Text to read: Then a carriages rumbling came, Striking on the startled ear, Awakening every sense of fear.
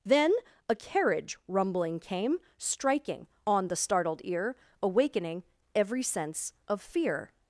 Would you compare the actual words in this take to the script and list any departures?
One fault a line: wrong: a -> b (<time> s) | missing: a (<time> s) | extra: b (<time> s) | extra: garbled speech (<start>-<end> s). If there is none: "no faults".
wrong: carriages -> carriage (0.7 s)